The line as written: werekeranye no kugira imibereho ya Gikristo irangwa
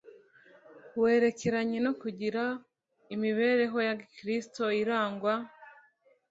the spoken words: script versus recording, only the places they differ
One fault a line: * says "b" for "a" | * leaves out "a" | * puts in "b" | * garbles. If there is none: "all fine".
all fine